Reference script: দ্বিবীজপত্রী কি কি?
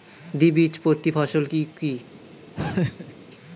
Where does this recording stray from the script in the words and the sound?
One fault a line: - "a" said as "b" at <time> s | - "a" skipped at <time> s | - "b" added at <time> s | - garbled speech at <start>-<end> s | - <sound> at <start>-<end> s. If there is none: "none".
- "ফসল" added at 1.2 s
- laugh at 2.5-3.1 s